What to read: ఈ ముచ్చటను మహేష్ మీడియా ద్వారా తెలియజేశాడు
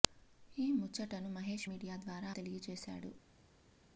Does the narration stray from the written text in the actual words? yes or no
no